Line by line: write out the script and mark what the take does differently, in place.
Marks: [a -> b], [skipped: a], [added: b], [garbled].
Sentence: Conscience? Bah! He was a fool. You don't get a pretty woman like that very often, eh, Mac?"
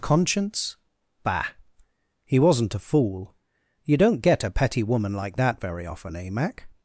Conscience? Bah! He [was -> wasn't] a fool. You don't get a [pretty -> petty] woman like that very often, eh, Mac?"